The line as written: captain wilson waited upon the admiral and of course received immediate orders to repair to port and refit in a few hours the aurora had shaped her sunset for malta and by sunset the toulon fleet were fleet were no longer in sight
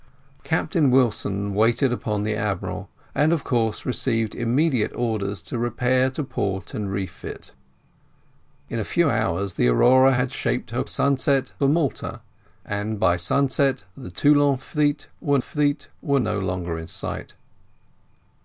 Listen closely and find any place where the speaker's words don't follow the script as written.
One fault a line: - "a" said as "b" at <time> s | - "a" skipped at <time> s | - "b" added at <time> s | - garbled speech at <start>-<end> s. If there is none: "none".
none